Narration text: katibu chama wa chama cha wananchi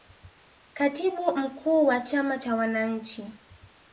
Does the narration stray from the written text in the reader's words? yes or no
yes